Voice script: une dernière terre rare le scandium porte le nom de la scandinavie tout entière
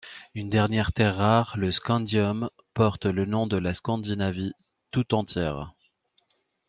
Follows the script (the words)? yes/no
yes